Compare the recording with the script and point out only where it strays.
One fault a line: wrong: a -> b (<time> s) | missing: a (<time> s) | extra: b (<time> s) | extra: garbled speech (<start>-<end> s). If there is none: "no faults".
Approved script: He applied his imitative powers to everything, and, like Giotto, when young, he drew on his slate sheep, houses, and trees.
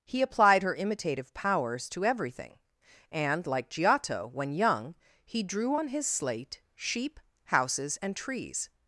wrong: his -> her (0.6 s)